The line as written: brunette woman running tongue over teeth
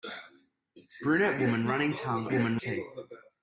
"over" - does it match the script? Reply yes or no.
no